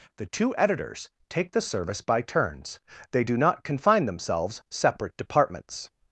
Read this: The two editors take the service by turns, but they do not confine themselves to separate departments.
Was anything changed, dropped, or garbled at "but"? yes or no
yes